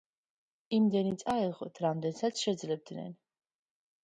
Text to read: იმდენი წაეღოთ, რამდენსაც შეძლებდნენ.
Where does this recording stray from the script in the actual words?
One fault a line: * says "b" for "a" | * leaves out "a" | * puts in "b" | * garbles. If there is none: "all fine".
all fine